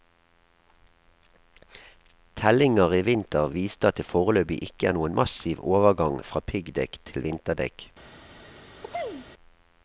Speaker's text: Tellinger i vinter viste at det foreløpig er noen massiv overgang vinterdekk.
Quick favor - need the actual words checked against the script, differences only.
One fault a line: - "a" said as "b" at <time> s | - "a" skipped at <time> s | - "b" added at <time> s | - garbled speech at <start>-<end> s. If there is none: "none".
- "ikke" added at 4.7 s
- "fra piggdekk til" added at 6.2 s